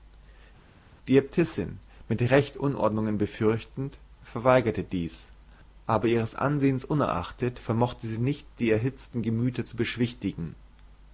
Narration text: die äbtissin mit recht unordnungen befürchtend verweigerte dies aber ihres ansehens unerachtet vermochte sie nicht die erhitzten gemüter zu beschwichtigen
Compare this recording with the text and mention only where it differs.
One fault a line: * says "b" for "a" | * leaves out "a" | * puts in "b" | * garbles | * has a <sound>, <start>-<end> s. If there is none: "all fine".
all fine